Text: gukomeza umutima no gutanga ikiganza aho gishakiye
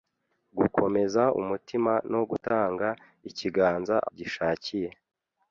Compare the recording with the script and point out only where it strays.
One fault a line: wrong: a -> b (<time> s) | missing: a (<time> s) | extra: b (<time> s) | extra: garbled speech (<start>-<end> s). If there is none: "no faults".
missing: aho (4.0 s)